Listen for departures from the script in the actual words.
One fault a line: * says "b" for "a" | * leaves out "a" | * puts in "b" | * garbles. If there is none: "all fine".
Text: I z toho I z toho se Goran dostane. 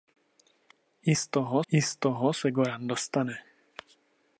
all fine